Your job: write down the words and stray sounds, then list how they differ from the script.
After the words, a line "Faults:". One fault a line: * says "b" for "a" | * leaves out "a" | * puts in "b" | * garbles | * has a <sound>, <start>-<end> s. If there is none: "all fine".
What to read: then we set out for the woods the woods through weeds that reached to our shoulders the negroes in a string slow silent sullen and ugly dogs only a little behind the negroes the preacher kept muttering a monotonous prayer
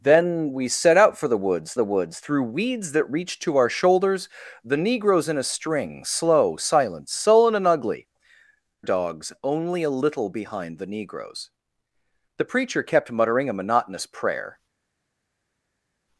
then we set out for the woods the woods through weeds that reached to our shoulders the negroes in a string slow silent sullen and ugly dogs only a little behind the negroes the preacher kept muttering a monotonous prayer
Faults:
all fine